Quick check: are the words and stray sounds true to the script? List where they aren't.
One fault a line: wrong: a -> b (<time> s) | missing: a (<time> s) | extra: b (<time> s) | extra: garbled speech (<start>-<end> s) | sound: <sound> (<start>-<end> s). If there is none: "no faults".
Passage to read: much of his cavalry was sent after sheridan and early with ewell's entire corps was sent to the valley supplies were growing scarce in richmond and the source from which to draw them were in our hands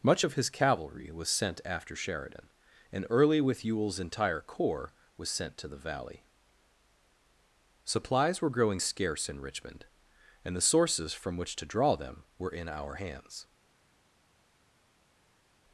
wrong: source -> sources (10.6 s)